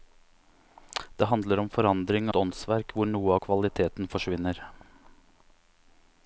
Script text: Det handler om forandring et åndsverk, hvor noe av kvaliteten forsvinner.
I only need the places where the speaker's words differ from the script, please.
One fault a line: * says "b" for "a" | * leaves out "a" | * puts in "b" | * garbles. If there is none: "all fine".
all fine